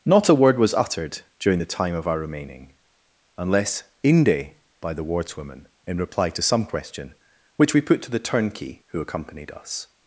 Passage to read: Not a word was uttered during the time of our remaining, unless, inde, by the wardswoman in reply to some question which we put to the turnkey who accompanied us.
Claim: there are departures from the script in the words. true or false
false